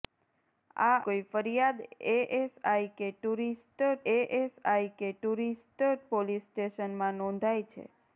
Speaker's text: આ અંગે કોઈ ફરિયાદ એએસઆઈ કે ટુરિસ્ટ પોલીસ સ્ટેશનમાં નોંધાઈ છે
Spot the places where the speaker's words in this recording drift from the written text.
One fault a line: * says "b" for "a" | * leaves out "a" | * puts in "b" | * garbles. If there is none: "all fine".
* leaves out "અંગે"
* puts in "એએસઆઈ કે ટુરિસ્ટ"